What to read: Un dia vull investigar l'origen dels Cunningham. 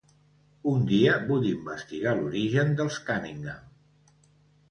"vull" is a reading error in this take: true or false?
false